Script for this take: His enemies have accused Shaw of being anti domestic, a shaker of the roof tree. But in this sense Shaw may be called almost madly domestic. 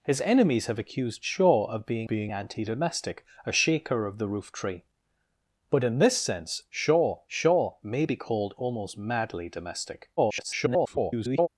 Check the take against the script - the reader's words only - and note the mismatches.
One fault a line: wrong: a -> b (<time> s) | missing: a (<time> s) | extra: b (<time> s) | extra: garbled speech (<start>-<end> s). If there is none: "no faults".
extra: being (2.1 s)
extra: Shaw (7.3 s)
extra: garbled speech (10.2-11.5 s)